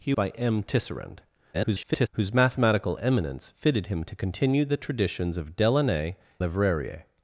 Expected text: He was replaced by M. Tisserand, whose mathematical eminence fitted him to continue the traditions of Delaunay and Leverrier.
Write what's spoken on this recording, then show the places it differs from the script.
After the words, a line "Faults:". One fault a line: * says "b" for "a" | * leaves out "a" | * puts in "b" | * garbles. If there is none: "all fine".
He by M. Tisserand, [garbled] whose mathematical eminence fitted him to continue the traditions of Delaunay Leverrier.
Faults:
* leaves out "was replaced"
* garbles
* leaves out "and"